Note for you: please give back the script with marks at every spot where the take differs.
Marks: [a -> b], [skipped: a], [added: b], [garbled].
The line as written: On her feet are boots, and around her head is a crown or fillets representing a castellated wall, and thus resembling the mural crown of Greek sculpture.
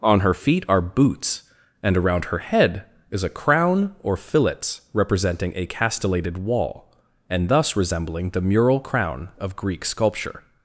On her feet are boots, and around her head is a crown or fillets representing a castellated wall, and thus resembling the mural crown of Greek sculpture.